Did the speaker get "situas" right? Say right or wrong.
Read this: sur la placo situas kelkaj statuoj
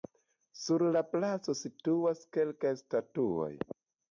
right